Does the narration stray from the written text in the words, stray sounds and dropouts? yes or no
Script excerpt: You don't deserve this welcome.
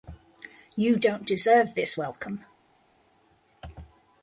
no